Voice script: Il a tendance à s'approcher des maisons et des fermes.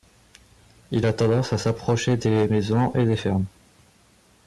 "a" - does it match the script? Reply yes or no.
yes